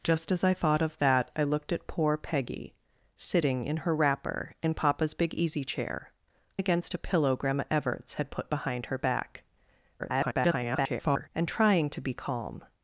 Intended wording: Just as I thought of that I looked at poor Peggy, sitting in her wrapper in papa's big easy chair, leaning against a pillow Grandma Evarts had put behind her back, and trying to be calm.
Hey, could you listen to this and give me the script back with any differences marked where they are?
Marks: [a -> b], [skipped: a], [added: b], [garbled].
Just as I thought of that I looked at poor Peggy, sitting in her wrapper in papa's big easy chair, [skipped: leaning] against a pillow Grandma Evarts had put behind her back, [garbled] and trying to be calm.